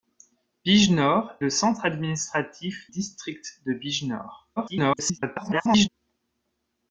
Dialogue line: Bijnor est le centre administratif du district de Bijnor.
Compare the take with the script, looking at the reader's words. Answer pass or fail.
fail